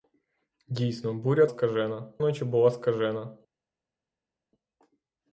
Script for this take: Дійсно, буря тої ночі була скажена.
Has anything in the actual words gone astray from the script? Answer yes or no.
yes